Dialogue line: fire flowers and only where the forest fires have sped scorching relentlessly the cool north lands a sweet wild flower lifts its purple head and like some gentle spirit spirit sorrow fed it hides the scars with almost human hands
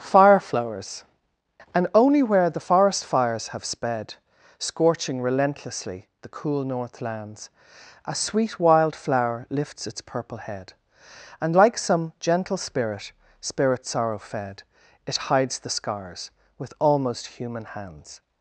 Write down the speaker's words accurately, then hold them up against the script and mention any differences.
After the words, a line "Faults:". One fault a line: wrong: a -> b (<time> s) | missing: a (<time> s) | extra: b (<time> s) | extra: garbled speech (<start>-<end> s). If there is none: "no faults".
fire flowers and only where the forest fires have sped scorching relentlessly the cool north lands a sweet wild flower lifts its purple head and like some gentle spirit spirit sorrow fed it hides the scars with almost human hands
Faults:
no faults